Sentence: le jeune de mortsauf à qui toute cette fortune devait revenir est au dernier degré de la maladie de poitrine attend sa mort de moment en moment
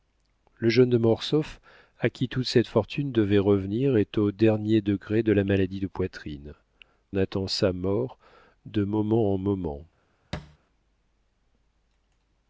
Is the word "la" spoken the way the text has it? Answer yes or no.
yes